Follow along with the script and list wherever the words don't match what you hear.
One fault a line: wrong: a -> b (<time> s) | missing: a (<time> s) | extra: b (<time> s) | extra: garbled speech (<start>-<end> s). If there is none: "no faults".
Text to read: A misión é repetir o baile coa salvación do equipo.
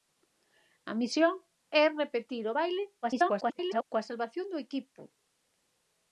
extra: garbled speech (3.0-3.8 s)